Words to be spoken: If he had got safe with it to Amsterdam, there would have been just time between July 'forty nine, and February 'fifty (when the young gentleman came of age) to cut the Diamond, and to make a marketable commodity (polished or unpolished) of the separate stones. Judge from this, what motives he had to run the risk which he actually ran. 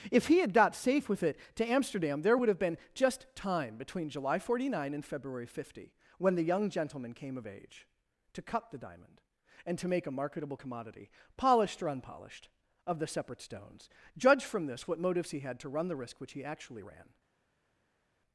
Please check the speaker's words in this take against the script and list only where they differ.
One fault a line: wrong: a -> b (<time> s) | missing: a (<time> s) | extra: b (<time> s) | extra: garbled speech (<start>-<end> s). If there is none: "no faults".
no faults